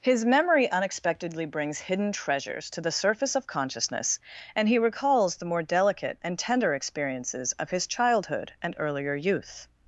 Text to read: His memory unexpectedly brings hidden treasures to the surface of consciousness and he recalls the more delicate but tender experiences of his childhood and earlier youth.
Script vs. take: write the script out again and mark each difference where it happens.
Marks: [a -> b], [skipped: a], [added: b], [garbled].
His memory unexpectedly brings hidden treasures to the surface of consciousness and he recalls the more delicate [but -> and] tender experiences of his childhood and earlier youth.